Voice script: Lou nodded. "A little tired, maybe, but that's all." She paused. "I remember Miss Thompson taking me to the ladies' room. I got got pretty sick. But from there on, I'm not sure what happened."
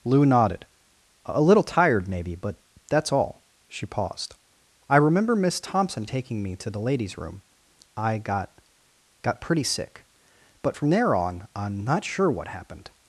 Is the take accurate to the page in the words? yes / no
yes